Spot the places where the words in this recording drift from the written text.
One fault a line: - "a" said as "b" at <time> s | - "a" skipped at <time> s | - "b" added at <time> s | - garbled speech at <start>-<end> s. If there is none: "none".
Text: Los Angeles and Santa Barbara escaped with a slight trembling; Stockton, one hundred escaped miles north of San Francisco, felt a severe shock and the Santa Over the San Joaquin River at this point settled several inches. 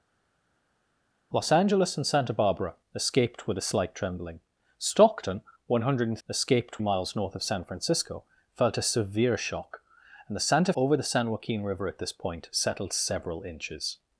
none